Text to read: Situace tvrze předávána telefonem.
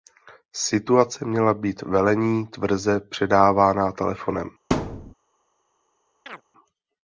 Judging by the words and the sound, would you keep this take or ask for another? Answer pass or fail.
fail